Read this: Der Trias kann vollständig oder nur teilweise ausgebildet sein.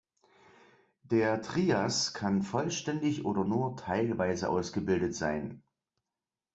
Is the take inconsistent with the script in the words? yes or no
no